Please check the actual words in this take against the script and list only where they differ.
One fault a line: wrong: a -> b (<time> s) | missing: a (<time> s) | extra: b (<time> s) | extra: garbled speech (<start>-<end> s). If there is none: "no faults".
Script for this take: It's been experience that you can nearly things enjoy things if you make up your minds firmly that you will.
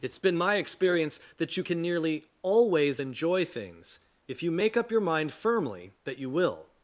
extra: my (0.4 s)
wrong: things -> always (2.4 s)
wrong: minds -> mind (5.0 s)